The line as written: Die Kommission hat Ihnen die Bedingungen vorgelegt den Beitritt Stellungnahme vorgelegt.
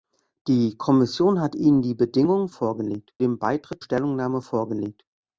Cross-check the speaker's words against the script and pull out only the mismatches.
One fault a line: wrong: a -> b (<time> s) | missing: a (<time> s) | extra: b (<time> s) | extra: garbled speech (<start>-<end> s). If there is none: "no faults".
no faults